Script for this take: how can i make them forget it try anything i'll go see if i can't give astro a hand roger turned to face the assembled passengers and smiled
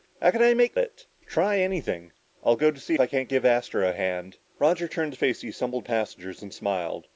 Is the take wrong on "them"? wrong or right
wrong